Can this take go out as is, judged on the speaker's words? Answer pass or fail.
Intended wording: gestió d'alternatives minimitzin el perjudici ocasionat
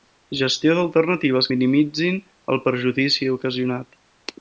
pass